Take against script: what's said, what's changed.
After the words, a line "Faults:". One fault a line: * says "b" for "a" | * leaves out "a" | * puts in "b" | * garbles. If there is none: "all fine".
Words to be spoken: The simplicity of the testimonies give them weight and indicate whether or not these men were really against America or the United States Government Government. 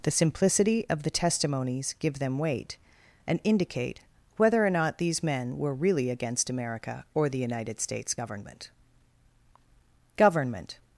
The simplicity of the testimonies give them weight and indicate whether or not these men were really against America or the United States Government Government.
Faults:
all fine